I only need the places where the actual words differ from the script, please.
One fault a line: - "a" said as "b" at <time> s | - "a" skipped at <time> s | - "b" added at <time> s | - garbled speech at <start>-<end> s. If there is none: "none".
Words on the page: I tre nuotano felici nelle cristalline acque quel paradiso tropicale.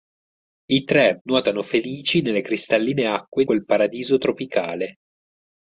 none